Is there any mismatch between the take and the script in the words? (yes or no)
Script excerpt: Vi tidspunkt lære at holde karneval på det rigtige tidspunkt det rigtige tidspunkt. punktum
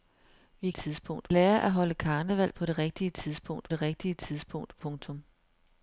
no